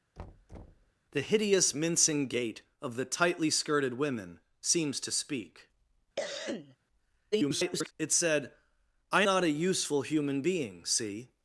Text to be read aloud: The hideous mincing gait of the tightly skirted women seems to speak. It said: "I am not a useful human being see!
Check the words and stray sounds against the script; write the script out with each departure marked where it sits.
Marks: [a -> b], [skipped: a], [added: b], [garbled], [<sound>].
[thud] The hideous mincing gait of the tightly skirted women seems to speak. [cough] [garbled] It said: "I [skipped: am] not a useful human being see!